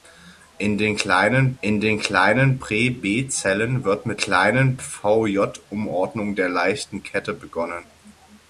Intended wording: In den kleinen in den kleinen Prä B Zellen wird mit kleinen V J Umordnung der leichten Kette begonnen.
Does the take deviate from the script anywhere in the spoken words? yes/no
no